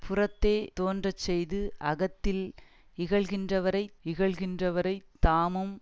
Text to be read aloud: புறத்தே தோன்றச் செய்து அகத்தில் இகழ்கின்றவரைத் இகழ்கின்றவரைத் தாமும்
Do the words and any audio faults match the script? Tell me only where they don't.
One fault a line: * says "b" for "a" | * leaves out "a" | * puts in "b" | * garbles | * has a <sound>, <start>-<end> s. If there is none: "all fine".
all fine